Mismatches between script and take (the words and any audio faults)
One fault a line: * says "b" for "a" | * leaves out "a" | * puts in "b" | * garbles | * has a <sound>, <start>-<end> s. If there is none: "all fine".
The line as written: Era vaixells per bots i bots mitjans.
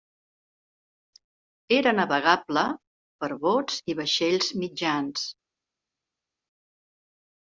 * says "navegable" for "vaixells"
* says "vaixells" for "bots"